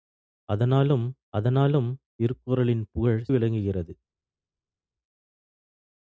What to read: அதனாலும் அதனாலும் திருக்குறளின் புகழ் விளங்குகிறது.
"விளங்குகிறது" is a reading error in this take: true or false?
false